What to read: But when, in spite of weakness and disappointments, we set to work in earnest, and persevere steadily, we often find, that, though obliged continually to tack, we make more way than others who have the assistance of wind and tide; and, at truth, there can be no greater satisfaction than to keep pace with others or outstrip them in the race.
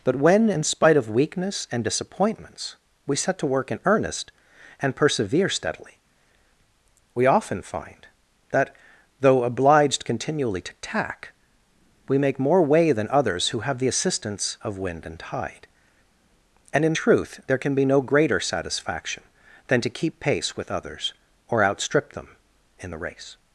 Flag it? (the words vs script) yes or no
yes